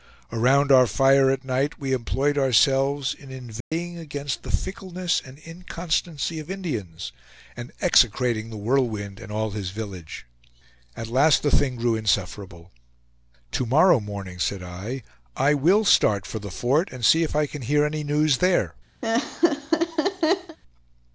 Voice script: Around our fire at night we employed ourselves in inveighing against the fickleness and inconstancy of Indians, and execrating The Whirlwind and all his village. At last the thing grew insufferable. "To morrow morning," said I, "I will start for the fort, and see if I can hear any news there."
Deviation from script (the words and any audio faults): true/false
true